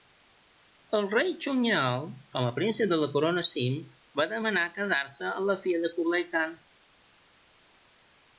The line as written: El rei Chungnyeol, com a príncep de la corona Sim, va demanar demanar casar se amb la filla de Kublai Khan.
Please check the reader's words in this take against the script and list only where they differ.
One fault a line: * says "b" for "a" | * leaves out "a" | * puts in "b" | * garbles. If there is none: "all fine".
* leaves out "demanar"